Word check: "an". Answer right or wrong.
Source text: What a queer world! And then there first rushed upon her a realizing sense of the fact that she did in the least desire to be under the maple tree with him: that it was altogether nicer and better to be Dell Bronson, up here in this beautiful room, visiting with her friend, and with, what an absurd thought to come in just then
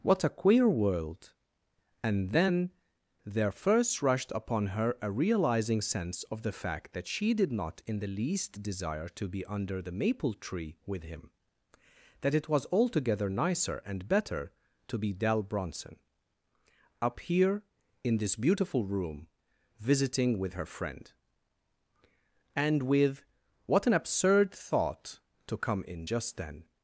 right